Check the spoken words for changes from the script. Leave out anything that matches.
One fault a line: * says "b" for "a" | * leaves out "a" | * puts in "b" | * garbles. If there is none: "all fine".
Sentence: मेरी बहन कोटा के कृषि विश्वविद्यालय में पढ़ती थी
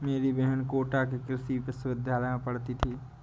all fine